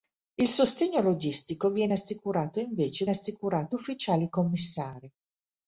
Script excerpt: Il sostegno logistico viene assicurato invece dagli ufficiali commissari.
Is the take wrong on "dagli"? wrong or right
wrong